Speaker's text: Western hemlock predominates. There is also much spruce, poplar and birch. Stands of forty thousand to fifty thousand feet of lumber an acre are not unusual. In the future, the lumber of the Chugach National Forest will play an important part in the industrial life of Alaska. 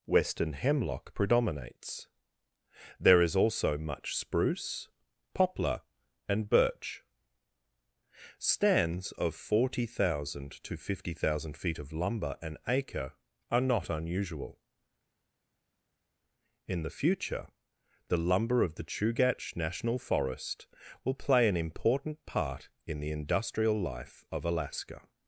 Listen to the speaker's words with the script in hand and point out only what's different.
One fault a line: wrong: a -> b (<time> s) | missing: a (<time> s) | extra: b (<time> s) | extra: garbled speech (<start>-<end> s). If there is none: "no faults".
no faults